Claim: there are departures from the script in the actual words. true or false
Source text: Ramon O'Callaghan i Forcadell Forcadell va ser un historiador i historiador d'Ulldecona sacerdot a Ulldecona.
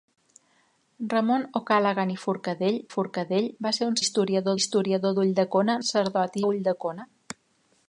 false